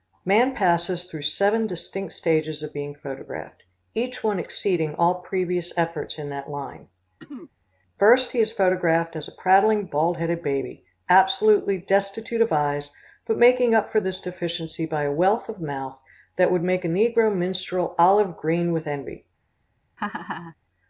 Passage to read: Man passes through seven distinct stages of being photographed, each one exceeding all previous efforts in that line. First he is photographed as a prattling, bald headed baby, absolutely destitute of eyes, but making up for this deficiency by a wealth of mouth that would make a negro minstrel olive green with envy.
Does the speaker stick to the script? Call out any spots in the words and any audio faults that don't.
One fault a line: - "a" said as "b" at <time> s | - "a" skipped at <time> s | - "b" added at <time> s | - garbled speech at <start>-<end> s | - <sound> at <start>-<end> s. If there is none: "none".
- throat clearing at 7.2-7.5 s
- laugh at 20.0-20.6 s